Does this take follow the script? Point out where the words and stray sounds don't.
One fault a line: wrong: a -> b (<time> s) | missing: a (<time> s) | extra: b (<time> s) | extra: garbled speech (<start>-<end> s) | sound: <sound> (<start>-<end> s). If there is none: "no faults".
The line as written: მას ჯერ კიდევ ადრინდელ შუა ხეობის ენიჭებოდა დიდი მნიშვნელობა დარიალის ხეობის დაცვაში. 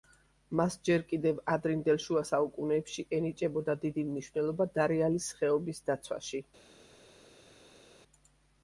wrong: ხეობის -> საუკუნეებში (2.3 s)